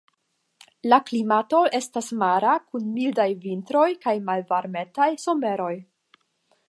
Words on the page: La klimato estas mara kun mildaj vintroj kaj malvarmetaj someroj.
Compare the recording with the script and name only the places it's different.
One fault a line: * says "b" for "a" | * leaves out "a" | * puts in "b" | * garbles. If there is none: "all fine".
all fine